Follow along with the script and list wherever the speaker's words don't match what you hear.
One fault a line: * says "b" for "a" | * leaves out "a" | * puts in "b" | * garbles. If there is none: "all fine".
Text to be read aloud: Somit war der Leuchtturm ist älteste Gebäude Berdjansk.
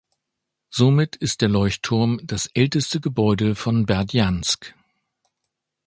* says "ist" for "war"
* says "das" for "ist"
* puts in "von"